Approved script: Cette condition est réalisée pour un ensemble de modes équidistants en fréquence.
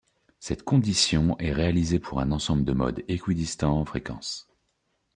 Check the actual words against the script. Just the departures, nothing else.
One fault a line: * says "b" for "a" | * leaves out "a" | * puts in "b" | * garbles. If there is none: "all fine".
all fine